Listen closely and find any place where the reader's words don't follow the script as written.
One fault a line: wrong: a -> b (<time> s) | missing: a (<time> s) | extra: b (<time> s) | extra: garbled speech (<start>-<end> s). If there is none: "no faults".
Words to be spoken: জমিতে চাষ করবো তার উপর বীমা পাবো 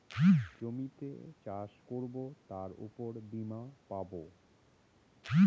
no faults